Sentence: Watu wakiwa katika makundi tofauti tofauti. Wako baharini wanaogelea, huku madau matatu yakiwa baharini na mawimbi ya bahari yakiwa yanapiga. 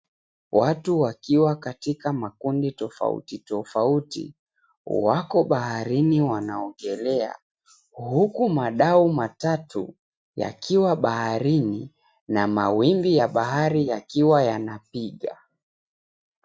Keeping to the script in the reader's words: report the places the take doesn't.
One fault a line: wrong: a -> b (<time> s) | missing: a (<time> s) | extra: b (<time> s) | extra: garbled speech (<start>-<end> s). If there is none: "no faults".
no faults